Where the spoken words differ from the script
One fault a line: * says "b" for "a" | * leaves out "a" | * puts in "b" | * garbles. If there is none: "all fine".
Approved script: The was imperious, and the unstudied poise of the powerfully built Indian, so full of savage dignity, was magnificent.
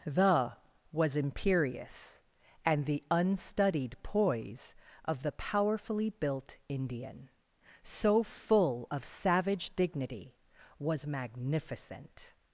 all fine